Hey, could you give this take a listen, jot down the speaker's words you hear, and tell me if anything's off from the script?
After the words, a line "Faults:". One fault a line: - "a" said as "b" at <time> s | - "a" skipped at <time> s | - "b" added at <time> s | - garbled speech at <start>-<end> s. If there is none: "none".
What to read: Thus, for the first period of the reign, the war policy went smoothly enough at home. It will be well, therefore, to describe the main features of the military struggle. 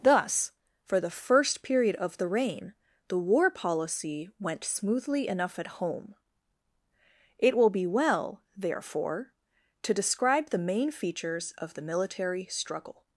Thus, for the first period of the reign, the war policy went smoothly enough at home. It will be well, therefore, to describe the main features of the military struggle.
Faults:
none